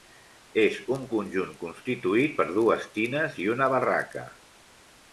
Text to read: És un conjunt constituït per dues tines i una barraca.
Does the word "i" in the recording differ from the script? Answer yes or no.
no